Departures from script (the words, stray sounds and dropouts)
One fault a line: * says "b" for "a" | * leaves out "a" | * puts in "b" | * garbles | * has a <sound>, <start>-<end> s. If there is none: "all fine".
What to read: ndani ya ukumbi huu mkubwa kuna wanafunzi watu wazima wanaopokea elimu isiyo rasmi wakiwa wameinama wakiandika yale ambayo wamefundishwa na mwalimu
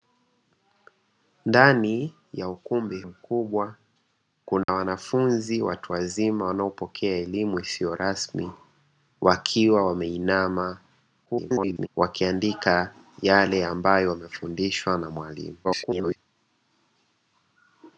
* leaves out "huu"
* has a dropout, 4.6-4.7 s
* garbles
* garbles